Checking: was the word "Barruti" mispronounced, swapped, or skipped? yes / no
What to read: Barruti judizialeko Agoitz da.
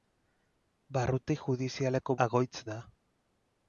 no